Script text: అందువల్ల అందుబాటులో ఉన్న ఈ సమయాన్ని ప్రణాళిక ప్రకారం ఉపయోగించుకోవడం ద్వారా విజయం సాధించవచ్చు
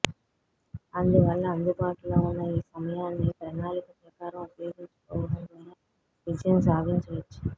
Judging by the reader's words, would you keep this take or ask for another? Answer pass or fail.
pass